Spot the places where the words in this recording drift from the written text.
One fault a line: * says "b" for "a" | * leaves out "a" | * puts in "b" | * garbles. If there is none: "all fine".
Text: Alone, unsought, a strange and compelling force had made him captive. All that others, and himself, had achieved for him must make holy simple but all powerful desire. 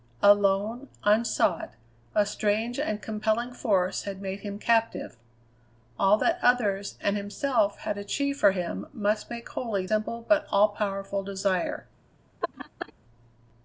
all fine